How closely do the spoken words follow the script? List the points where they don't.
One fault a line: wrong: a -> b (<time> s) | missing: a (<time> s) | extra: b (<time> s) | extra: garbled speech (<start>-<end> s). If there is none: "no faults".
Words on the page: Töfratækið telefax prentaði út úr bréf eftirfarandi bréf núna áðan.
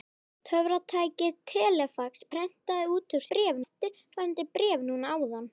no faults